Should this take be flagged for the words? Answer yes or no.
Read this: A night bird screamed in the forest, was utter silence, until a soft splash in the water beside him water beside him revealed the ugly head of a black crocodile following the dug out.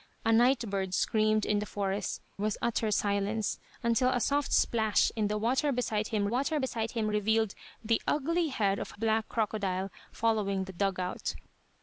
no